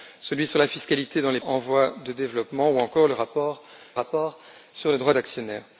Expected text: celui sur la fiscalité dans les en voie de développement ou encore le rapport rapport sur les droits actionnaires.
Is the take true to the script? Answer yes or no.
yes